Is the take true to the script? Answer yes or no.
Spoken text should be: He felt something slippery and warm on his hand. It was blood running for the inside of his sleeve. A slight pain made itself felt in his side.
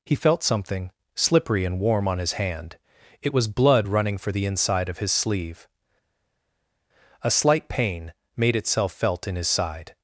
yes